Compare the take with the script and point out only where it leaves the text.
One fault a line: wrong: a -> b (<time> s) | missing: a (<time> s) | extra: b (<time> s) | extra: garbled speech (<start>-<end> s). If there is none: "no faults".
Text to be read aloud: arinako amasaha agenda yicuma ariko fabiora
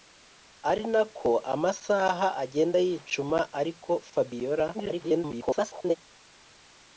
extra: garbled speech (4.7-6.0 s)